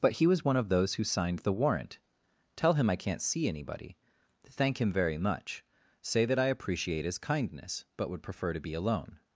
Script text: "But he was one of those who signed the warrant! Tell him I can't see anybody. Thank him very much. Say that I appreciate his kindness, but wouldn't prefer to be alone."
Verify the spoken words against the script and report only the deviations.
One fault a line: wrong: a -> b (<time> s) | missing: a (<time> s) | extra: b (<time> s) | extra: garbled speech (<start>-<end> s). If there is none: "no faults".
wrong: wouldn't -> would (8.1 s)